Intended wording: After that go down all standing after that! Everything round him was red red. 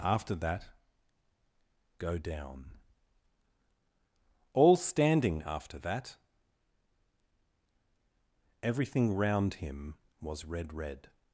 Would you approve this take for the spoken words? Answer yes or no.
yes